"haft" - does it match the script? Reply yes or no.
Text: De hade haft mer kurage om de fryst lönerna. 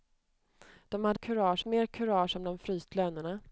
no